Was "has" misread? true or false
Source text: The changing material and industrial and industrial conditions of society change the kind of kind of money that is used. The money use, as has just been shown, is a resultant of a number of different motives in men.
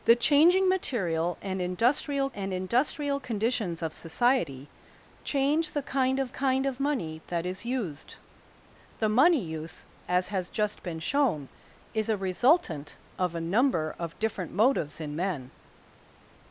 false